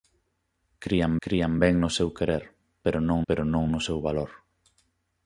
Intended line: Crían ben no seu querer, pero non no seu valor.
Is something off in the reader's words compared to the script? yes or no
yes